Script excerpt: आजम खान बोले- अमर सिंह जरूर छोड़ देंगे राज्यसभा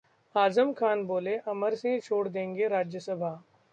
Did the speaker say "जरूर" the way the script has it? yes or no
no